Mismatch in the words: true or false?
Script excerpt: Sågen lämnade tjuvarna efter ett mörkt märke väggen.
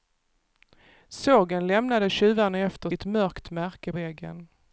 false